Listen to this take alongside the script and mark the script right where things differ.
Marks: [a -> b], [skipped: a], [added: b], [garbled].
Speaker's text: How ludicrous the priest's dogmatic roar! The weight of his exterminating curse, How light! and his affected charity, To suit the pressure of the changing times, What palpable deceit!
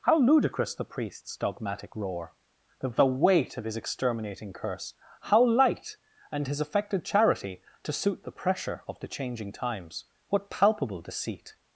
How ludicrous the priest's dogmatic roar! The [added: the] weight of his exterminating curse, How light! and his affected charity, To suit the pressure of the changing times, What palpable deceit!